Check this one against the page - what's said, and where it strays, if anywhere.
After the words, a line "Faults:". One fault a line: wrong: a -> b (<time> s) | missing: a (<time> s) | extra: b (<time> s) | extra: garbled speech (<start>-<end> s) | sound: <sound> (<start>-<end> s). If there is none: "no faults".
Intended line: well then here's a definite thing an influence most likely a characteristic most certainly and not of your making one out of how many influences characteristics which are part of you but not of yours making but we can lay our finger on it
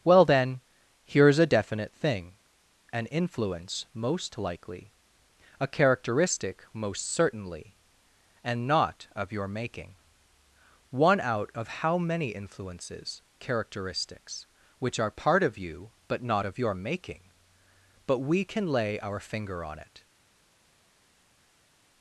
well then here's a definite thing an influence most likely a characteristic most certainly and not of your making one out of how many influences characteristics which are part of you but not of your making but we can lay our finger on it
Faults:
wrong: yours -> your (16.6 s)